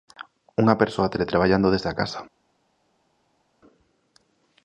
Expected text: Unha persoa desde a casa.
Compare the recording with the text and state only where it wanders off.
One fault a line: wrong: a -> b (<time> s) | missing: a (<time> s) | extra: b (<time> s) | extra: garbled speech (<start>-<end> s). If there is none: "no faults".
extra: teletraballando (1.1 s)